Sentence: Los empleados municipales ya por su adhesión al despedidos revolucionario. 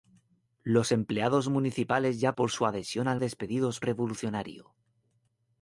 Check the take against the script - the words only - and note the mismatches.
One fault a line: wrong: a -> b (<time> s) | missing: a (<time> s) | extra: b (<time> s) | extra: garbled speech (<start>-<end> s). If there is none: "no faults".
no faults